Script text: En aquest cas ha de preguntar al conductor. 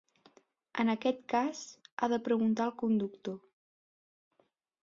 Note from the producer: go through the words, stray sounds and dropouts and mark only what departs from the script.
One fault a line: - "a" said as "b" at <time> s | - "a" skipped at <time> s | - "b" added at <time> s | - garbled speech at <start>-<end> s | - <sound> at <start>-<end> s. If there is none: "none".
none